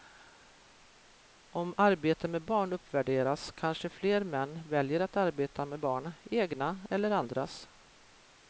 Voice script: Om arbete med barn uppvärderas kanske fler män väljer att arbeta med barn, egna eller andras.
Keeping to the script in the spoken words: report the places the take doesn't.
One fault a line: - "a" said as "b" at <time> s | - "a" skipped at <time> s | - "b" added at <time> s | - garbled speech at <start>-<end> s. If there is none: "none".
none